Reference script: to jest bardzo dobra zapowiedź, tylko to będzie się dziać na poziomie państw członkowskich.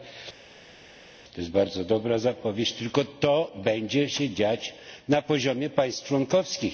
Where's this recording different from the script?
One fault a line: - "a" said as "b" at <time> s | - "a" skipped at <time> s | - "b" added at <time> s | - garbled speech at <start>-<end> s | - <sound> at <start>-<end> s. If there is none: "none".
none